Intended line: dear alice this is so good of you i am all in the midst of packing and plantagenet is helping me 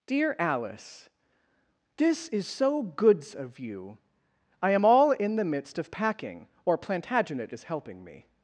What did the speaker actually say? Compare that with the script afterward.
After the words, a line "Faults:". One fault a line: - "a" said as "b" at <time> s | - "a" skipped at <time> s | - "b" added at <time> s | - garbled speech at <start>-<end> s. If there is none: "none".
dear alice this is so goods of you i am all in the midst of packing or plantagenet is helping me
Faults:
- "good" said as "goods" at 2.8 s
- "and" said as "or" at 6.6 s